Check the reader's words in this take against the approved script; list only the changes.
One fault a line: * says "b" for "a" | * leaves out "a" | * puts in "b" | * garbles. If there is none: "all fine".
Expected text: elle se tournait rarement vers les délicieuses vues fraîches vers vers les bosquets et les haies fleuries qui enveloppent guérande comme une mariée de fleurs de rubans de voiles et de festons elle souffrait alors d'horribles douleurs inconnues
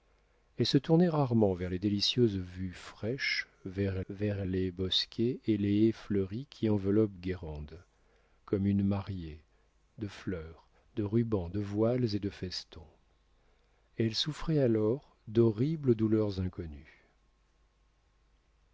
all fine